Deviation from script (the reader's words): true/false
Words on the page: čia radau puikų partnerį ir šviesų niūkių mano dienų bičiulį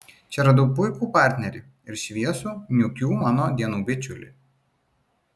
false